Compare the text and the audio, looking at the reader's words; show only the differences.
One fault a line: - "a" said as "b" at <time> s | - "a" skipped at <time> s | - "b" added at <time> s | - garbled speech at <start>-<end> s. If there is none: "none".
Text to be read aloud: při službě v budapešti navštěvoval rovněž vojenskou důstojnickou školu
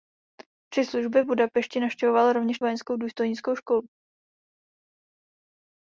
none